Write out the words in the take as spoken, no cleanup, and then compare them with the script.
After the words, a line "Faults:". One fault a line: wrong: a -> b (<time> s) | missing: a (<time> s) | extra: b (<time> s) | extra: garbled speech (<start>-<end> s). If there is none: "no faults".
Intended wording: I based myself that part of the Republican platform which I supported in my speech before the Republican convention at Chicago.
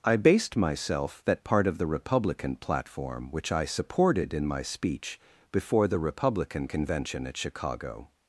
I based myself that part of the Republican platform which I supported in my speech before the Republican convention at Chicago.
Faults:
no faults